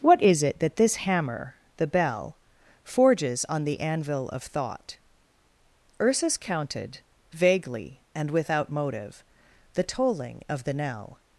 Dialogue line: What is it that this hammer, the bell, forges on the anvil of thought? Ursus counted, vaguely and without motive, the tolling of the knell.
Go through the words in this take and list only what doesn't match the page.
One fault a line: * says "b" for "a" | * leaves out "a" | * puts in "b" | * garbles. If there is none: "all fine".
all fine